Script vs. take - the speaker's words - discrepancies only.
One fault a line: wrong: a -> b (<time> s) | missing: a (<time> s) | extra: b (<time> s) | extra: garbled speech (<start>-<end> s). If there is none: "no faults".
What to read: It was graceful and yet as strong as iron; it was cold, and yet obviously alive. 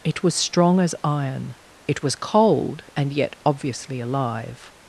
missing: graceful and yet as (0.3 s)